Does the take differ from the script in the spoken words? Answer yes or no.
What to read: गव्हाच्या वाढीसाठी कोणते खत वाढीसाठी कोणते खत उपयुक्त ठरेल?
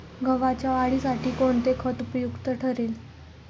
yes